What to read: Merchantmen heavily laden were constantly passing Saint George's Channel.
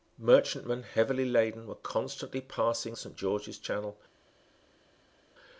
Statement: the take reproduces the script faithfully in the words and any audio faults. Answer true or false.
true